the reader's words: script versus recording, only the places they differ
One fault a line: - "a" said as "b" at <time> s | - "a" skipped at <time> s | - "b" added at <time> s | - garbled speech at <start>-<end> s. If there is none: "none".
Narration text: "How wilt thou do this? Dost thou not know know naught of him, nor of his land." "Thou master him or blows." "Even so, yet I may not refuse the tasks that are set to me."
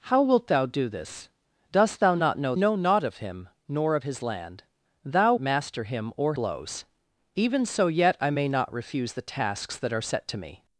none